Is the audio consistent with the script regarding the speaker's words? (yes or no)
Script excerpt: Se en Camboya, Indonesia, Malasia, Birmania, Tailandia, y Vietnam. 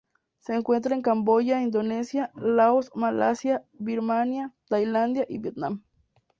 no